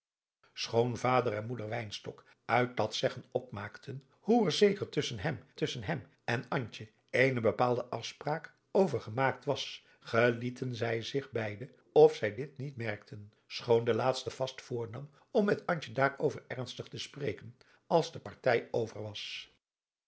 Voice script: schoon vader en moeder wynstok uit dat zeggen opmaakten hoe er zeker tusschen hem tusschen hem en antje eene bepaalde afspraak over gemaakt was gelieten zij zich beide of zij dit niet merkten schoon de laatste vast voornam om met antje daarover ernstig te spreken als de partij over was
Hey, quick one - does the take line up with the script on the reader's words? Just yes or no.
yes